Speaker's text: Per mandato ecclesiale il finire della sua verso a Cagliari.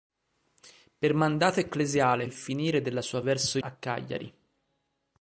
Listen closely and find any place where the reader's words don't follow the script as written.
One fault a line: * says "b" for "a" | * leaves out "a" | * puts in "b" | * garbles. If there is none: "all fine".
all fine